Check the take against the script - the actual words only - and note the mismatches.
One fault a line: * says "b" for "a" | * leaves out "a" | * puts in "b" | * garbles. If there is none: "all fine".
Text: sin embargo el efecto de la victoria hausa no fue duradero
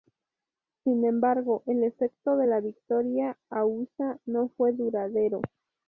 all fine